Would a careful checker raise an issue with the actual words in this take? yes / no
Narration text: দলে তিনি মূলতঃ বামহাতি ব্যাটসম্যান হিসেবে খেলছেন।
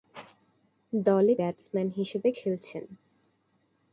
yes